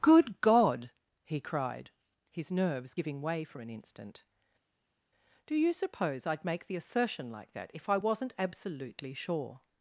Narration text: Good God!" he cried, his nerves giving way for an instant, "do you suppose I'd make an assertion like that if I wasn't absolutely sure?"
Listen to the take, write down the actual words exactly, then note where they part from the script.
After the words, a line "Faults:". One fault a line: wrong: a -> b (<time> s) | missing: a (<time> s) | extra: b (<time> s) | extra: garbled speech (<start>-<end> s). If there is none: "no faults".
Good God!" he cried, his nerves giving way for an instant, "do you suppose I'd make the assertion like that if I wasn't absolutely sure?"
Faults:
wrong: an -> the (6.7 s)